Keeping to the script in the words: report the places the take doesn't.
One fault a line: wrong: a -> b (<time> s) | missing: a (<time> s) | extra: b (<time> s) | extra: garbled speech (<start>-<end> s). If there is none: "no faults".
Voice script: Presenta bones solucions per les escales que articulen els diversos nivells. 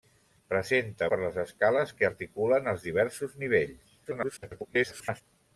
missing: bones solucions (1.1 s)
extra: garbled speech (4.0-5.2 s)